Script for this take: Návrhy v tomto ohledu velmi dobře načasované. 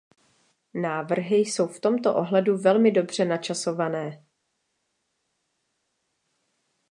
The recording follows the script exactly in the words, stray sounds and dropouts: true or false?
false